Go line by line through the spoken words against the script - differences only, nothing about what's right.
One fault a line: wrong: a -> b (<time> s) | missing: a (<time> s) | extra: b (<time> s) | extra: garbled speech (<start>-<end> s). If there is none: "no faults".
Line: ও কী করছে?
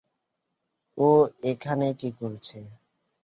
extra: এখানে (1.5 s)